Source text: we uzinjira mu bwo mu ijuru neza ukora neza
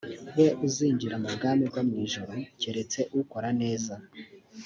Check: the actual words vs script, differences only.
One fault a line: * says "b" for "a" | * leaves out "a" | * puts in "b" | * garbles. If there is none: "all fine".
* puts in "bwami"
* says "keretse" for "neza"